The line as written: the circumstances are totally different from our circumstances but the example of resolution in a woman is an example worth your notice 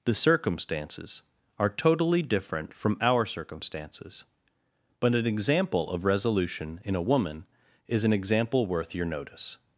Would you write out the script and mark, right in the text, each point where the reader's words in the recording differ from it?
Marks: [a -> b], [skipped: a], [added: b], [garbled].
the circumstances are totally different from our circumstances but [the -> an] example of resolution in a woman is an example worth your notice